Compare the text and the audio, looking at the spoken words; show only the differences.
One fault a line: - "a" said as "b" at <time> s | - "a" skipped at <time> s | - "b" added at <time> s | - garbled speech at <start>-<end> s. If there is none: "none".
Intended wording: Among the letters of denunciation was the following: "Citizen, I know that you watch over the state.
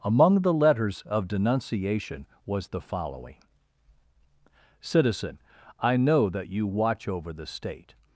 none